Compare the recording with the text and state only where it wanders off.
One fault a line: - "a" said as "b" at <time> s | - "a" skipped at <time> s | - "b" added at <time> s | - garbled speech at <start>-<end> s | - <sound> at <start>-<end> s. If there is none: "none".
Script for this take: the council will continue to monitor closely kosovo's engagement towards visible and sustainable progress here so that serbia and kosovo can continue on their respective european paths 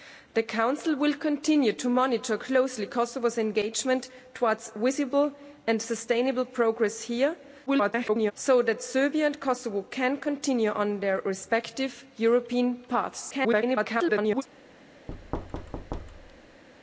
- garbled speech at 7.7-8.3 s
- garbled speech at 13.3-14.4 s
- thud at 15.1-16.6 s